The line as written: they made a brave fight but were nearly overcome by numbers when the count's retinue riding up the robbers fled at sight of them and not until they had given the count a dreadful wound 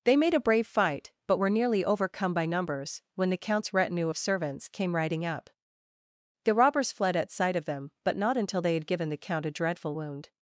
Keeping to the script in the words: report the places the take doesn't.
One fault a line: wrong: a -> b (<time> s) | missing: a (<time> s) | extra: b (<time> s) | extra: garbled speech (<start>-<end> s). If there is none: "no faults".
extra: of servants came (4.1 s)
wrong: and -> but (8.0 s)